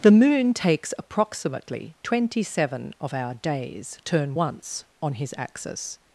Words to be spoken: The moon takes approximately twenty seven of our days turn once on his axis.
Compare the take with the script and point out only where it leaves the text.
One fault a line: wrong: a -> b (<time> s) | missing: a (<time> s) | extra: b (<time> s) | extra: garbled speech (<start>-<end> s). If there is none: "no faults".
no faults